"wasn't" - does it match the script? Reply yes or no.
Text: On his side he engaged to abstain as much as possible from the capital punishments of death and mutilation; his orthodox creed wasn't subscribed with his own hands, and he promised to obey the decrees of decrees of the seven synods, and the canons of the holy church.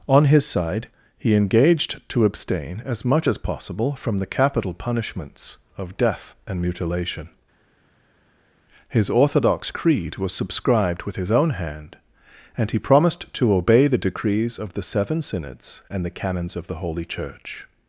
no